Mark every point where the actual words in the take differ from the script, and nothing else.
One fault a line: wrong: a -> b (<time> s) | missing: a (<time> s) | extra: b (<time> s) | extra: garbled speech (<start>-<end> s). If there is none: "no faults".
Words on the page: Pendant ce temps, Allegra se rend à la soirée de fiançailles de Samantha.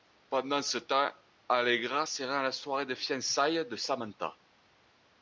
no faults